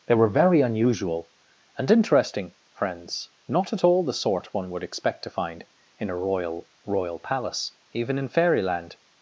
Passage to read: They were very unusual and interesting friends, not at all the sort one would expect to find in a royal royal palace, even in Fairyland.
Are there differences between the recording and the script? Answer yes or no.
no